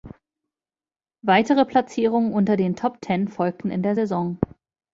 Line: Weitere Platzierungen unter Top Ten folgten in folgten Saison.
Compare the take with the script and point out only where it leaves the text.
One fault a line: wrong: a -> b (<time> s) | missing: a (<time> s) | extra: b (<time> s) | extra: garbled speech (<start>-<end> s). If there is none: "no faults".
extra: den (2.6 s)
wrong: folgten -> der (3.8 s)